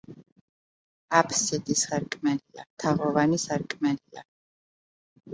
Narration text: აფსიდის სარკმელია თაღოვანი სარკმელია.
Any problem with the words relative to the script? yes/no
no